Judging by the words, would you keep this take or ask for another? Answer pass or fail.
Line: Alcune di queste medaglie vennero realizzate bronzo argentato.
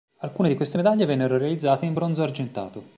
fail